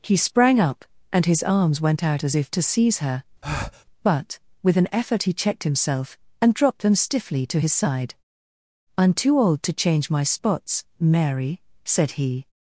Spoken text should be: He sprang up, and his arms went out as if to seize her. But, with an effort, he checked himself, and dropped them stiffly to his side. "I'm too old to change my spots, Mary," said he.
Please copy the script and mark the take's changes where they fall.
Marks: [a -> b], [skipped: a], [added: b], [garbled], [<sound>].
He sprang up, and his arms went out as if to seize her. [breath] But, with an effort, he checked himself, and dropped them stiffly to his side. "I'm too old to change my spots, Mary," said he.